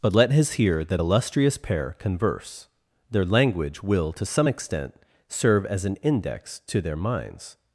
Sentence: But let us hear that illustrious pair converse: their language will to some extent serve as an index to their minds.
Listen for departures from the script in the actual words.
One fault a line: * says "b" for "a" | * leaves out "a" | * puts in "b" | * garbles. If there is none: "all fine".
* says "his" for "us"